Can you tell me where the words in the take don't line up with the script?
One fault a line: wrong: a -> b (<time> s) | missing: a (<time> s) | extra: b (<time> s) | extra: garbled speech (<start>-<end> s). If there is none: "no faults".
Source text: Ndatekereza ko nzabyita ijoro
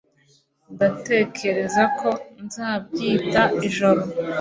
no faults